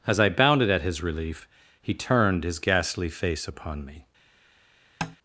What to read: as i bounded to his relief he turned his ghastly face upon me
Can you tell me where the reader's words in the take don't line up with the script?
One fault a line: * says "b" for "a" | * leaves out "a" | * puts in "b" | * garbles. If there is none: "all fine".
* says "at" for "to"